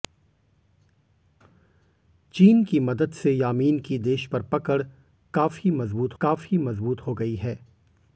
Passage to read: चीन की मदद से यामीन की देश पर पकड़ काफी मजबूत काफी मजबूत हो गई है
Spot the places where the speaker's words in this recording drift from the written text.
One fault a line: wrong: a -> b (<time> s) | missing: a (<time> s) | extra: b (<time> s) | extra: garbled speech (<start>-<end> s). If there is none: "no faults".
no faults